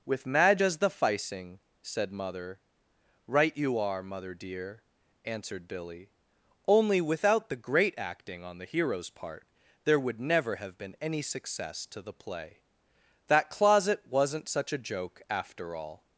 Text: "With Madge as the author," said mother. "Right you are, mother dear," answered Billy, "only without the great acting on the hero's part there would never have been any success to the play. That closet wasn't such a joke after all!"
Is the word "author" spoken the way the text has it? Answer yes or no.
no